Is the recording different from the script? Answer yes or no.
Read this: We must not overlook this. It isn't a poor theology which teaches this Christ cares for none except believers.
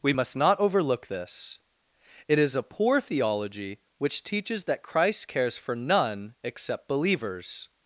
yes